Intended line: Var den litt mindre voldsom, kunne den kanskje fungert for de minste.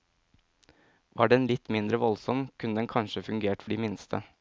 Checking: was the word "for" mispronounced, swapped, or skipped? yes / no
yes